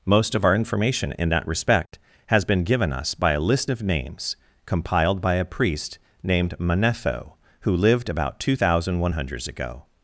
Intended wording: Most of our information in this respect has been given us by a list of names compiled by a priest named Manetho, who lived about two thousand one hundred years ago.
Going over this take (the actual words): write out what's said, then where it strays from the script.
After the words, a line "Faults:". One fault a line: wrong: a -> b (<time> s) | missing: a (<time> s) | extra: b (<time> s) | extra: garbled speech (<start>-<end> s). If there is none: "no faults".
Most of our information in that respect has been given us by a list of names compiled by a priest named Manetho, who lived about two thousand one hundred years ago.
Faults:
wrong: this -> that (1.3 s)